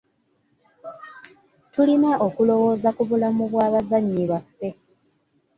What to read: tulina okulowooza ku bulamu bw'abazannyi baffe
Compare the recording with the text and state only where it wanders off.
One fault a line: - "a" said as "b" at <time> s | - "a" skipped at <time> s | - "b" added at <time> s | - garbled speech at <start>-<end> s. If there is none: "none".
none